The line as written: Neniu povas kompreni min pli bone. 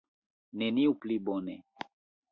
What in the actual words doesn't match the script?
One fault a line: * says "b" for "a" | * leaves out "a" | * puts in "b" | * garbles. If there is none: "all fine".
* leaves out "povas kompreni min"